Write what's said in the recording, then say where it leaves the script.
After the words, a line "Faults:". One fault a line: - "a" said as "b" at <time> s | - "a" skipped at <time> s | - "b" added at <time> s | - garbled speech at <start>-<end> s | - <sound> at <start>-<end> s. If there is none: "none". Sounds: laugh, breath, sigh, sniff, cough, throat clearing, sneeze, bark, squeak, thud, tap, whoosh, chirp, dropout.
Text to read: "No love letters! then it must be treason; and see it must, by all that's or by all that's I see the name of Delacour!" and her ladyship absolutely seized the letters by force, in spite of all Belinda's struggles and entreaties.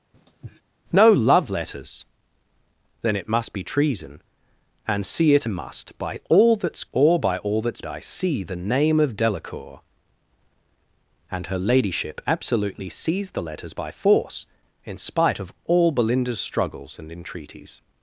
"No love letters! then it must be treason; and see it must, by all that's or by all that's I see the name of Delacour!" and her ladyship absolutely seized the letters by force, in spite of all Belinda's struggles and entreaties.
Faults:
- sniff at 0.1-0.6 s